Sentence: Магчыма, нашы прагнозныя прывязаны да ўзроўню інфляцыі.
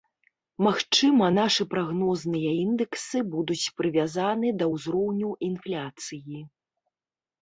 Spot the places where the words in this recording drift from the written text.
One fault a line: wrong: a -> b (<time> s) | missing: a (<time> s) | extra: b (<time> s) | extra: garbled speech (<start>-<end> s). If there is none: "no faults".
extra: індэксы будуць (2.6 s)